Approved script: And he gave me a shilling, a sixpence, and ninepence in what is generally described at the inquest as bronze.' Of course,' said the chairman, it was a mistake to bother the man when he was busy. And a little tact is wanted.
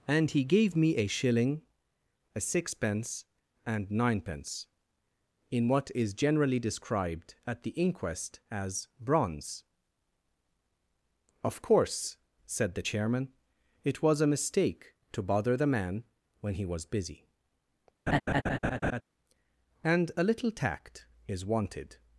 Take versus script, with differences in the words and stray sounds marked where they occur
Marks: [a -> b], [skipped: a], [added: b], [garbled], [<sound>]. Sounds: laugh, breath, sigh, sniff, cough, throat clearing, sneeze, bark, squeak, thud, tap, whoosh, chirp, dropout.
And he gave me a shilling, a sixpence, and ninepence in what is generally described at the inquest as bronze.' Of course,' said the chairman, it was a mistake to bother the man when he was busy. [laugh] And a little tact is wanted.